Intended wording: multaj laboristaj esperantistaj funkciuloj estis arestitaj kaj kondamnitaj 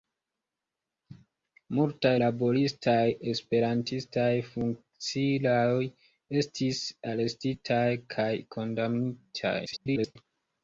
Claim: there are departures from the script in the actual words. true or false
true